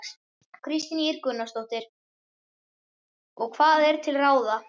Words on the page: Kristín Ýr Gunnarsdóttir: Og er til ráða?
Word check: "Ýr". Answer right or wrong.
right